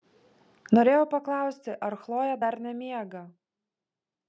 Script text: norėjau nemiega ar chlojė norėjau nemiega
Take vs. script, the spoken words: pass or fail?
fail